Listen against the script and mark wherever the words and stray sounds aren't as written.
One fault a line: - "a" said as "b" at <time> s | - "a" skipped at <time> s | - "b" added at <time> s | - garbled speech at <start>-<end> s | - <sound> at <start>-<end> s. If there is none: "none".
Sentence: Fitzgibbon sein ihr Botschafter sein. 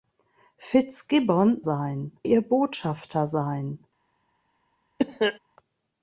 - cough at 5.0-5.4 s